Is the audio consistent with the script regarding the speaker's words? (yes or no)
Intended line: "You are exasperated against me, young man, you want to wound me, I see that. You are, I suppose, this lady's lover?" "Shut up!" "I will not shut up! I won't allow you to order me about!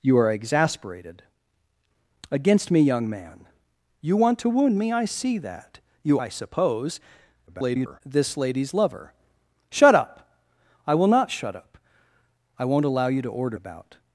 no